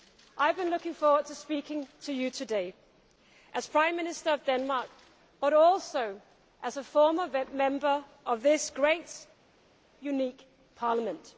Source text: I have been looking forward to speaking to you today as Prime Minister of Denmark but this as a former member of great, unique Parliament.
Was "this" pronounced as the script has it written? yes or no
no